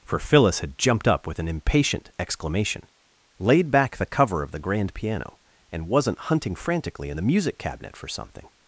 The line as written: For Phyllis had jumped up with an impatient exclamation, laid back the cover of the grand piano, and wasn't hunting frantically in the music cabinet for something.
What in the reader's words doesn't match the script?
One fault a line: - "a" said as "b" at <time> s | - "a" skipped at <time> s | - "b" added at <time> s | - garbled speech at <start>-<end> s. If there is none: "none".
none